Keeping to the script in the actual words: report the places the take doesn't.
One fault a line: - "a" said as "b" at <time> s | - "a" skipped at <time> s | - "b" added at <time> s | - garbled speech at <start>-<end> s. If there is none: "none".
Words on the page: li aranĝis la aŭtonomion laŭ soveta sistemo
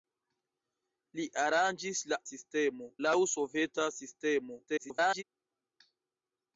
- "aŭtonomion" said as "sistemo" at 2.3 s
- garbled speech at 4.7-5.2 s